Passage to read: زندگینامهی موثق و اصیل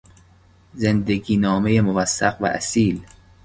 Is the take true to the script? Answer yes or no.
yes